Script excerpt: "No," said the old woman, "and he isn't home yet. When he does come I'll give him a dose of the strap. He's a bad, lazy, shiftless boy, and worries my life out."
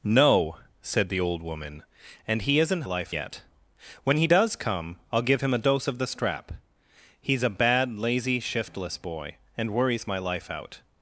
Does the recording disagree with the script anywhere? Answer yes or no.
yes